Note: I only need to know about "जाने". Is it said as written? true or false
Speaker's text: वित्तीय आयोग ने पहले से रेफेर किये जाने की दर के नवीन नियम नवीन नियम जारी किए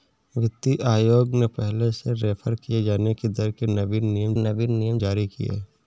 true